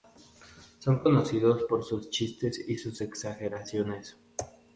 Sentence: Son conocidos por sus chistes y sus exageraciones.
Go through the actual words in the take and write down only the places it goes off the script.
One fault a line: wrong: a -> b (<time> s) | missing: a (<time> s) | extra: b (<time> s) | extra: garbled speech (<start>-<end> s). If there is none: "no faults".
no faults